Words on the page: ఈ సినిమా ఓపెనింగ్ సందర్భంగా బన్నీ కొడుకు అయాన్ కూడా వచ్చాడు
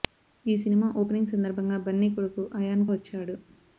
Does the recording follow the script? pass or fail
fail